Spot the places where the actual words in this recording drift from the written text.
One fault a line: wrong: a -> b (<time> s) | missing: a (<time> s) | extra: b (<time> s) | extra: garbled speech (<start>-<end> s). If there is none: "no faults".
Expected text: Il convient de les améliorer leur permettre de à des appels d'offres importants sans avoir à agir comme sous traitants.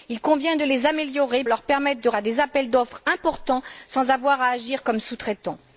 no faults